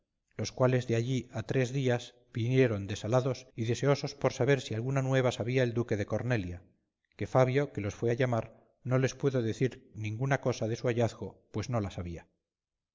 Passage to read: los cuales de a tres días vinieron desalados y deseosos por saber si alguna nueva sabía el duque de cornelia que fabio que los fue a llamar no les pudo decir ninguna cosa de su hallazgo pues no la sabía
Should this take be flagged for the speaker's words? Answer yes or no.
yes